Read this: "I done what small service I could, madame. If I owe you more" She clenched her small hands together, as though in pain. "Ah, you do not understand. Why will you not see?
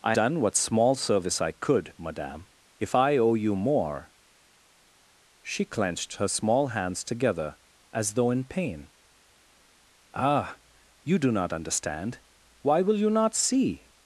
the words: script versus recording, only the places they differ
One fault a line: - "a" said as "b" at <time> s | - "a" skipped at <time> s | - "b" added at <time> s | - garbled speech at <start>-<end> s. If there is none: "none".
none